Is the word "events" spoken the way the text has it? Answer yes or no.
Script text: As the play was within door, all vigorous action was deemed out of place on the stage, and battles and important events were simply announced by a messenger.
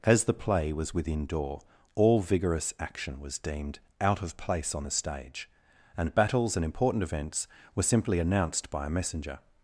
yes